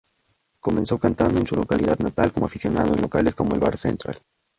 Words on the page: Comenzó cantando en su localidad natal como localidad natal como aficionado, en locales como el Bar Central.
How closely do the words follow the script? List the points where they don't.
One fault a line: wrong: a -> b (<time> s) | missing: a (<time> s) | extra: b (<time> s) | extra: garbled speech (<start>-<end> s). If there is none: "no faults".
missing: localidad natal como (2.5 s)